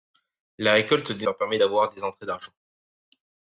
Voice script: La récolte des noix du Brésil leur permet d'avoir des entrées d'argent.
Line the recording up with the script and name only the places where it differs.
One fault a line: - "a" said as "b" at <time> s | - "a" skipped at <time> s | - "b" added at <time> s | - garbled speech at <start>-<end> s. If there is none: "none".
- "noix du Brésil" skipped at 1.3 s